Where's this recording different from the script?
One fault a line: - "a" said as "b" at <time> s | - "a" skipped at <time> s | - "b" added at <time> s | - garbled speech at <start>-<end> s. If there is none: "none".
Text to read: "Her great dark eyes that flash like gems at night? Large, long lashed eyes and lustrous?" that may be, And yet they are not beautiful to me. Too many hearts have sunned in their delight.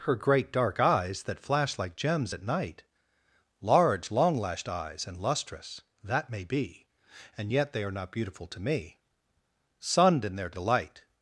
- "Too many hearts have" skipped at 9.0 s